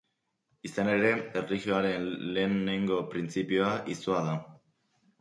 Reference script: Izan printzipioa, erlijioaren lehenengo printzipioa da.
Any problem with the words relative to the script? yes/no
yes